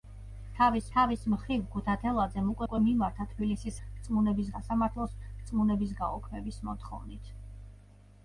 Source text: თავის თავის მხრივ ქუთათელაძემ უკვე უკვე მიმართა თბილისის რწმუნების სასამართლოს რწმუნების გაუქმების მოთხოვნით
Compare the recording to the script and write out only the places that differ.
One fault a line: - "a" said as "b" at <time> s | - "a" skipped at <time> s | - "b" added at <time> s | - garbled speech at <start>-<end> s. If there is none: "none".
none